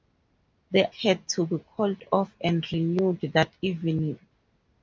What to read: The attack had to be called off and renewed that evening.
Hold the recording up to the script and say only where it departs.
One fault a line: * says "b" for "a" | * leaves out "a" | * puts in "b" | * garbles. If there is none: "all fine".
* leaves out "attack"